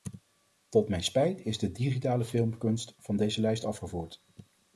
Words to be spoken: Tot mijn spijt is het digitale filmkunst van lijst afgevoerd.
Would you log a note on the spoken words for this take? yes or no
yes